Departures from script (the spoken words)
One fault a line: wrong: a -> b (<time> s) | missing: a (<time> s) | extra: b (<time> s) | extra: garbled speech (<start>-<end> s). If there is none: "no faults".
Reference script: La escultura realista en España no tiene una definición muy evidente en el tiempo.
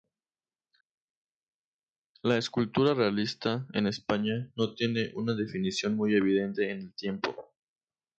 no faults